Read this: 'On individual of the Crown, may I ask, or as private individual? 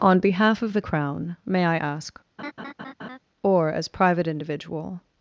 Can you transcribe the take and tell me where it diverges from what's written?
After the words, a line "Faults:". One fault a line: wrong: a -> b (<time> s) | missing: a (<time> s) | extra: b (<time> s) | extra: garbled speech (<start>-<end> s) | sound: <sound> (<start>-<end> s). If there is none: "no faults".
'On behalf of the Crown, may I ask, or as private individual?
Faults:
wrong: individual -> behalf (0.2 s)
sound: laugh (2.4-3.2 s)